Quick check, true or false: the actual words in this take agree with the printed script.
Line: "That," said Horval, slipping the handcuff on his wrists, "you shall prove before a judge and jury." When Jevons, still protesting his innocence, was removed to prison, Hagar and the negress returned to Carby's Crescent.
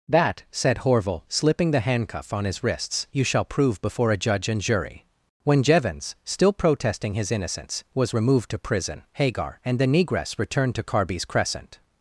true